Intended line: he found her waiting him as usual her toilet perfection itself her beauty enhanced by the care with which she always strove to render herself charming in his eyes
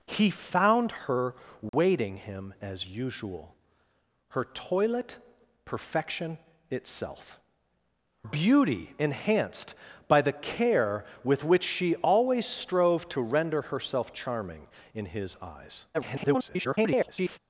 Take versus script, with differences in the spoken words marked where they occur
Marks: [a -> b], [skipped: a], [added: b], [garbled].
he found her waiting him as usual her toilet perfection itself [skipped: her] beauty enhanced by the care with which she always strove to render herself charming in his eyes [garbled]